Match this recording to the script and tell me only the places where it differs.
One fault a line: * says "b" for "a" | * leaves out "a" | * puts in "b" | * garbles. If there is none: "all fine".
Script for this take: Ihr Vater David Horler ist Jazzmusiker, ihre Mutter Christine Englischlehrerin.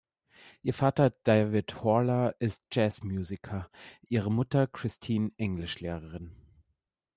all fine